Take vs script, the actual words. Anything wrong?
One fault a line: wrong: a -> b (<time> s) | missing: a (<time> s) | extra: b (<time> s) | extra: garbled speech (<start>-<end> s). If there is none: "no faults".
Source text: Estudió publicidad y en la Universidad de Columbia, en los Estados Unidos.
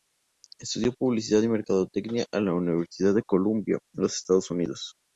extra: mercadotecnia (1.5 s)